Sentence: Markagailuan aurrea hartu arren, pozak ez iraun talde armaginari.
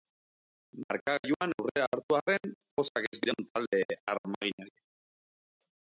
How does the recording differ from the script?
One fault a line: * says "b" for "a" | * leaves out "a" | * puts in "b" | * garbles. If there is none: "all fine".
all fine